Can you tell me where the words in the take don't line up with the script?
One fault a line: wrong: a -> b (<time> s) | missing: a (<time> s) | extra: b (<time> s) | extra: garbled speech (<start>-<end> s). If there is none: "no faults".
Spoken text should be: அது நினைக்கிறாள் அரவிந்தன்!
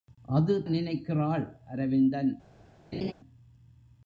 no faults